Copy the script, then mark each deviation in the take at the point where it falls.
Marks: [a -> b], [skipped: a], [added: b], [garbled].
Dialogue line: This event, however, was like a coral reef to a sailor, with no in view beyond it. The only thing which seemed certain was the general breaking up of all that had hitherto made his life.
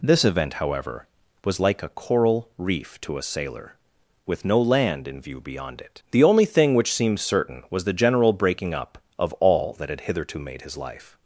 This event, however, was like a coral reef to a sailor, with no [added: land] in view beyond it. The only thing which seemed certain was the general breaking up of all that had hitherto made his life.